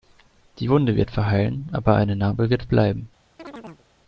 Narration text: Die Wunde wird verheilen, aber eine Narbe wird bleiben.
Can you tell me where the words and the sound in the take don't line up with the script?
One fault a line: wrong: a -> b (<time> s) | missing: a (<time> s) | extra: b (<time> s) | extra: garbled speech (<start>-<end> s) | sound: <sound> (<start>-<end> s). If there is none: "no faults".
sound: chirp (3.4-3.9 s)